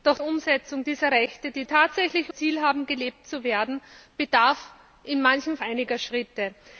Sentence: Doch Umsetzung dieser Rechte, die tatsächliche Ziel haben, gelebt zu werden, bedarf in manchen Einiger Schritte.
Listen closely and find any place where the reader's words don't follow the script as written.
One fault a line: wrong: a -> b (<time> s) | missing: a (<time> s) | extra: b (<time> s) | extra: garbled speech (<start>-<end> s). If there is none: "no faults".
no faults